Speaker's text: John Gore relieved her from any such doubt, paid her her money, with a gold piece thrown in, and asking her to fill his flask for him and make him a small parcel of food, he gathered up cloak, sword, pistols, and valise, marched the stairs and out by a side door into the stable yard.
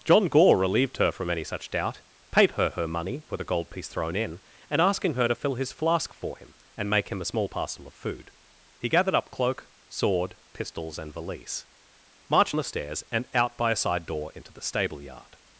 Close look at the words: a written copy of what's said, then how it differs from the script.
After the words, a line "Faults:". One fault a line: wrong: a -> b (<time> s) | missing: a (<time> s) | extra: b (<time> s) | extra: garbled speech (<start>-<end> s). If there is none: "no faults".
John Gore relieved her from any such doubt, paid her her money, with a gold piece thrown in, and asking her to fill his flask for him and make him a small parcel of food, he gathered up cloak, sword, pistols, and valise, marched the stairs and out by a side door into the stable yard.
Faults:
no faults